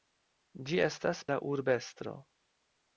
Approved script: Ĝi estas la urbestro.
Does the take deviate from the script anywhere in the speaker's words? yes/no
no